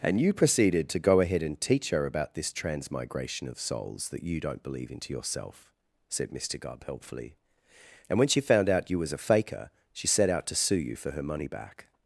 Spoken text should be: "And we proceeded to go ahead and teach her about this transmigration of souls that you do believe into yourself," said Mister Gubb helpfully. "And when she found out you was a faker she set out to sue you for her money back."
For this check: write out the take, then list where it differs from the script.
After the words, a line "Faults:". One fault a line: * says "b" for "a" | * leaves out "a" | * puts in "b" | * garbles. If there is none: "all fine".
"And you proceeded to go ahead and teach her about this transmigration of souls that you don't believe into yourself," said Mister Gubb helpfully. "And when she found out you was a faker she set out to sue you for her money back."
Faults:
* says "you" for "we"
* says "don't" for "do"